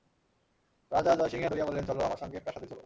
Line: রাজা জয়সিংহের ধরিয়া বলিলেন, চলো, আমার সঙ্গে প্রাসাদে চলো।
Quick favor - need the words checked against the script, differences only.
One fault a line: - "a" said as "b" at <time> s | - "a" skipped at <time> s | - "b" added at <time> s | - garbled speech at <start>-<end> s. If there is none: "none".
none